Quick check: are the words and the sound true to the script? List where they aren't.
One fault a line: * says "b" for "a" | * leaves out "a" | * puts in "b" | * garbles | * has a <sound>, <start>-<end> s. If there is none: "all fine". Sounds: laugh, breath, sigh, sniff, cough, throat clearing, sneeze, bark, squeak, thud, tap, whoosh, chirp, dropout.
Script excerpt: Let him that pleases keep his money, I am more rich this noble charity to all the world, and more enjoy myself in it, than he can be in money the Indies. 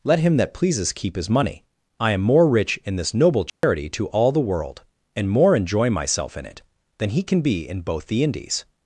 * puts in "in"
* has a dropout, 3.5-3.6 s
* says "both" for "money"